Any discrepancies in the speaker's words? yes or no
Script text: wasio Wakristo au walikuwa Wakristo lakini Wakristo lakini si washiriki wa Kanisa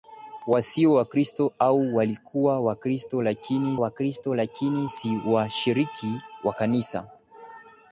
no